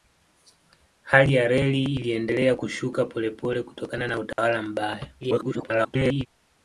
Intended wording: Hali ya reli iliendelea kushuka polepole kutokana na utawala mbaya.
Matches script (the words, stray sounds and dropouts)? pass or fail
fail